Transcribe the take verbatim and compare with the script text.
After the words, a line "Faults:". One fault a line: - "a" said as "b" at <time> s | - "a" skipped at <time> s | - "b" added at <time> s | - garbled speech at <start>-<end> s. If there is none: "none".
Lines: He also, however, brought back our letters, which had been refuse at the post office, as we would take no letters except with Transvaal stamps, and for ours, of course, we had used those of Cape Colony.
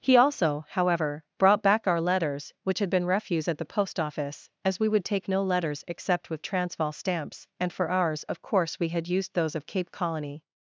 He also, however, brought back our letters, which had been refuse at the post office, as we would take no letters except with Transvaal stamps, and for ours, of course, we had used those of Cape Colony.
Faults:
none